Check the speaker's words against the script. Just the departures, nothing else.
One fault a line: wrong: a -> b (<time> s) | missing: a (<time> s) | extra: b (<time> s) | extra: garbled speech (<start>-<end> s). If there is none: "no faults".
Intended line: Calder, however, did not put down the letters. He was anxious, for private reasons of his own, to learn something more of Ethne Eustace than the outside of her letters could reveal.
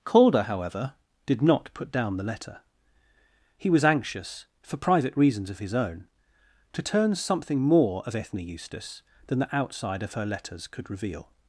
wrong: letters -> letter (2.2 s)
wrong: learn -> turn (6.8 s)